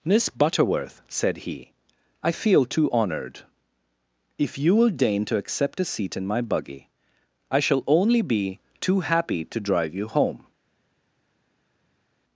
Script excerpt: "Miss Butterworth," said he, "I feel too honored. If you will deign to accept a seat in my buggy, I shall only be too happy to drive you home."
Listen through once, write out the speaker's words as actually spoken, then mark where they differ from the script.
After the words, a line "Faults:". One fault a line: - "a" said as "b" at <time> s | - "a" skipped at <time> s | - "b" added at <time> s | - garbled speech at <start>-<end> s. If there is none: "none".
"Miss Butterworth," said he, "I feel too honored. If you will deign to accept a seat in my buggy, I shall only be too happy to drive you home."
Faults:
none